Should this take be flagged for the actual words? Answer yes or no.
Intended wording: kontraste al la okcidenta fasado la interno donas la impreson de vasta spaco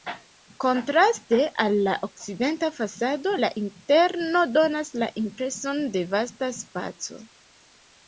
no